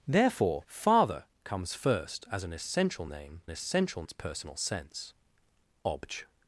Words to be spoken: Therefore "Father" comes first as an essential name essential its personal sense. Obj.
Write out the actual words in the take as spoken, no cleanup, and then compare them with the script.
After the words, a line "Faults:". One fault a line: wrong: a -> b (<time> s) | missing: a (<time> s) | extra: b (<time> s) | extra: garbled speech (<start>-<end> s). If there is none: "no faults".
Therefore "Father" comes first as an essential name essential its personal sense. Obj.
Faults:
no faults